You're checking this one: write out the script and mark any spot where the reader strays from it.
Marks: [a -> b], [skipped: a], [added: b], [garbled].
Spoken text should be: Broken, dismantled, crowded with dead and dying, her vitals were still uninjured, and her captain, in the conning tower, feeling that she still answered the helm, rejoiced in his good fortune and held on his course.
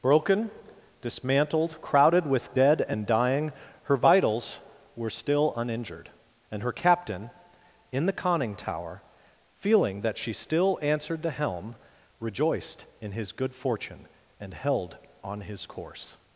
Broken, dismantled, crowded with dead and dying, her vitals were still uninjured, and her captain, in the conning tower, feeling that she still answered the helm, rejoiced in his good fortune and held on his course.